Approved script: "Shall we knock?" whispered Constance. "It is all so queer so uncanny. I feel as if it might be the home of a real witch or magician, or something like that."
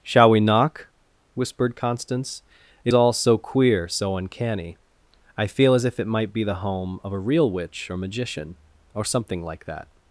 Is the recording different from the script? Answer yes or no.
yes